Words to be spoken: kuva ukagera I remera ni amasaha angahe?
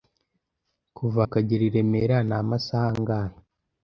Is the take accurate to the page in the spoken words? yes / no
yes